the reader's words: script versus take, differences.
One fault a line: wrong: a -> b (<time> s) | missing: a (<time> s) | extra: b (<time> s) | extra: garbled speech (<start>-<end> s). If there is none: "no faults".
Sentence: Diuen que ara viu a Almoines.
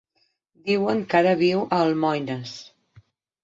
no faults